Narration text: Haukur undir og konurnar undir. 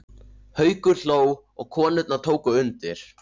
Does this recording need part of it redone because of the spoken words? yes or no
yes